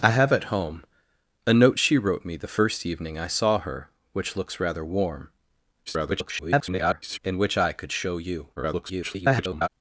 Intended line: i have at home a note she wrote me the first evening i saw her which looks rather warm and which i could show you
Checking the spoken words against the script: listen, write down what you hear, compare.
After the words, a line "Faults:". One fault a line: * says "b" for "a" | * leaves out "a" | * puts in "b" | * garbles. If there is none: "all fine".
i have at home a note she wrote me the first evening i saw her which looks rather warm [garbled] and which i could show you [garbled]
Faults:
* garbles
* garbles